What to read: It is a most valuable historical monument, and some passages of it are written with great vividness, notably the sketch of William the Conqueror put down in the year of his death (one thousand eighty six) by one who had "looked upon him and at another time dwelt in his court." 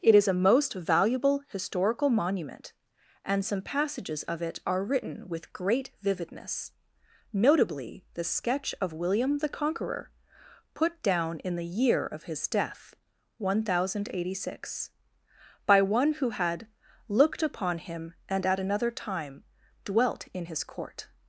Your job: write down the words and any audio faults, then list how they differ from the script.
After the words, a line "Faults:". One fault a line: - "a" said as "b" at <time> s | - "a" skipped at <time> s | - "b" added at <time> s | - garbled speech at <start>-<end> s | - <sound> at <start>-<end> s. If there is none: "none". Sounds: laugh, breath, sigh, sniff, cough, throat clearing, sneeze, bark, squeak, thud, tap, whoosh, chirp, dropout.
It is a most valuable historical monument, and some passages of it are written with great vividness, notably the sketch of William the Conqueror put down in the year of his death (one thousand eighty six) by one who had "looked upon him and at another time dwelt in his court."
Faults:
none